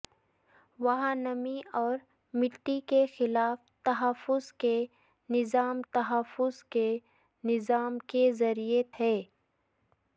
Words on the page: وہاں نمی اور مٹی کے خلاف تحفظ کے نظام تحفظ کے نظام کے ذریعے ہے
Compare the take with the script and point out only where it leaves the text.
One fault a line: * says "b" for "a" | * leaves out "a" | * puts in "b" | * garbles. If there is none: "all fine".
all fine